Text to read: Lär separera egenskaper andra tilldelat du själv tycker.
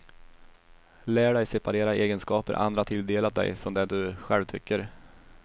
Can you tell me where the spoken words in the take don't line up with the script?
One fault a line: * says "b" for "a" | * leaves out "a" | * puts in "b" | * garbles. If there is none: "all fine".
* puts in "dig"
* puts in "dig från det"